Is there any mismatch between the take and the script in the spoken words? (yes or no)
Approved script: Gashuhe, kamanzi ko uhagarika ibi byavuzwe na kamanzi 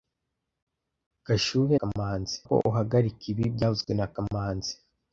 no